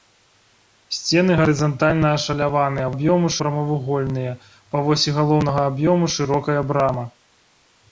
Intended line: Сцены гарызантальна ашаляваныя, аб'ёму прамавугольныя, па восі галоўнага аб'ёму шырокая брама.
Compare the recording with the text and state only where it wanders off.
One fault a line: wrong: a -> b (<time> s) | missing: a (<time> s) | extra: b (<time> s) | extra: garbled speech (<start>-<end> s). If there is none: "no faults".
no faults